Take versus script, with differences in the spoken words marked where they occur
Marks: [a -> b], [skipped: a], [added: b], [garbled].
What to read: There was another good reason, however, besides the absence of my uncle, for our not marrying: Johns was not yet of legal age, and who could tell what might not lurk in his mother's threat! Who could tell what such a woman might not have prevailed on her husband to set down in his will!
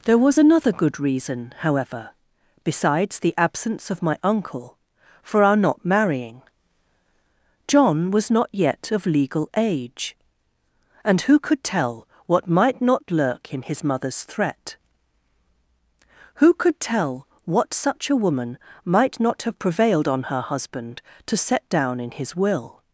There was another good reason, however, besides the absence of my uncle, for our not marrying: [Johns -> John] was not yet of legal age, and who could tell what might not lurk in his mother's threat! Who could tell what such a woman might not have prevailed on her husband to set down in his will!